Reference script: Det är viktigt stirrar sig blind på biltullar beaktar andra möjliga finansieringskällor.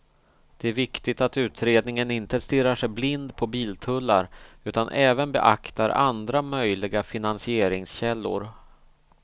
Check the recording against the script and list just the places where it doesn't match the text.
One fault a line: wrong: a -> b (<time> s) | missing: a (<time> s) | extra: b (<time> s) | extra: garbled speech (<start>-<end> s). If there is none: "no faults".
extra: att utredningen inte (1.2 s)
extra: utan även (4.6 s)